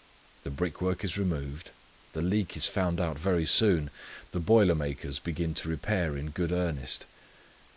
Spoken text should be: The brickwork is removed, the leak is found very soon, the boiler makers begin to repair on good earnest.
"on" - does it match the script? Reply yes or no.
no